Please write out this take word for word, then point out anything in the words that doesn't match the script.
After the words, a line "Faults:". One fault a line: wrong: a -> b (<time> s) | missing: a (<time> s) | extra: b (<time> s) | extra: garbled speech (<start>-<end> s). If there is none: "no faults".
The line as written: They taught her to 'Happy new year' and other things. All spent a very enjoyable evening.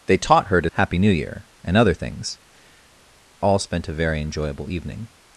They taught her to 'Happy new year' and other things. All spent a very enjoyable evening.
Faults:
no faults